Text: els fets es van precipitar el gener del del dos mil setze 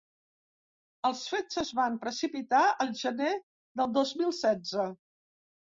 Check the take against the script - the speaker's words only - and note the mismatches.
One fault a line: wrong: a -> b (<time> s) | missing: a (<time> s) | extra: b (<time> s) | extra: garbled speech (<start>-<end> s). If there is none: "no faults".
missing: del (3.9 s)